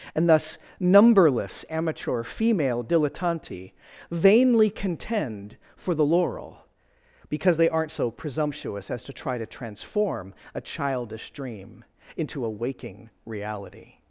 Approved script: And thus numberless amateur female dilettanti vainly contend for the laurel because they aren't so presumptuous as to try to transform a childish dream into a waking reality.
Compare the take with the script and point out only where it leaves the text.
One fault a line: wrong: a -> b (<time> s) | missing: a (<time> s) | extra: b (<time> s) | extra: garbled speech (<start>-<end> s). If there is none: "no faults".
no faults